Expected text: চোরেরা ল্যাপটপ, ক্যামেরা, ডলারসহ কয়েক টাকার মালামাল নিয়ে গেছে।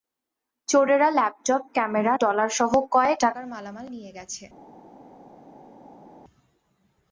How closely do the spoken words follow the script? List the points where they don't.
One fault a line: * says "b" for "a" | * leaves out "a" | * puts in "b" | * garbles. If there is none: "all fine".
all fine